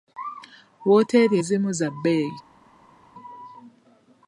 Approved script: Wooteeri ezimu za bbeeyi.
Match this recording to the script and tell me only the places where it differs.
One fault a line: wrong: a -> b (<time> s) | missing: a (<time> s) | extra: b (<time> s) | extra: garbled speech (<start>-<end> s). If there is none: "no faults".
no faults